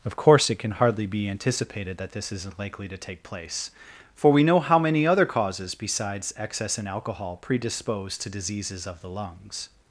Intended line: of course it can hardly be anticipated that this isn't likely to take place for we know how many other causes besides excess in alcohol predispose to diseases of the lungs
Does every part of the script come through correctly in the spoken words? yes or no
yes